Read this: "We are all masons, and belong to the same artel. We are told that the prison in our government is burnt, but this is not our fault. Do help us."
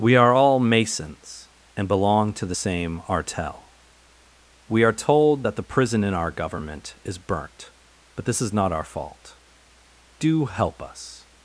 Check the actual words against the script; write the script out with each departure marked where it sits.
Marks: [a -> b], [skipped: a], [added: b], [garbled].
"We are all masons, and belong to the same artel. We are told that the prison in our government is burnt, but this is not our fault. Do help us."